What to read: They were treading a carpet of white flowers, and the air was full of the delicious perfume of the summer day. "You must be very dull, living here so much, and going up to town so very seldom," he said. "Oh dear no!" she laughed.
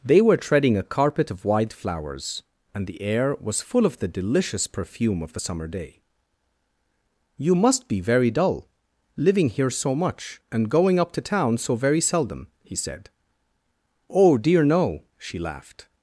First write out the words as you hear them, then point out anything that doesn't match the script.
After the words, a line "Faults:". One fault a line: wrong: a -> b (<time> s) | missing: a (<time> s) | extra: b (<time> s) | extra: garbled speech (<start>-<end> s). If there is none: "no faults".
They were treading a carpet of white flowers, and the air was full of the delicious perfume of the summer day. "You must be very dull, living here so much, and going up to town so very seldom," he said. "Oh dear no!" she laughed.
Faults:
no faults